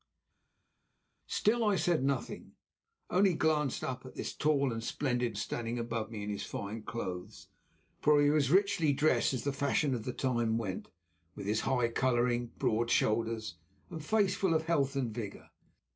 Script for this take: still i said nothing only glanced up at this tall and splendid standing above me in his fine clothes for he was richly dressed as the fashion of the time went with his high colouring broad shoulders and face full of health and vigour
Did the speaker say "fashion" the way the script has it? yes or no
yes